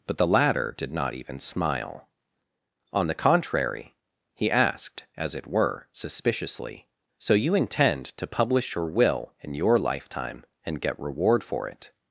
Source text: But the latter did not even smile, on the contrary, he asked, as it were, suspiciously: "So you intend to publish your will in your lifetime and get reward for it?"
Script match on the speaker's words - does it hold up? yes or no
yes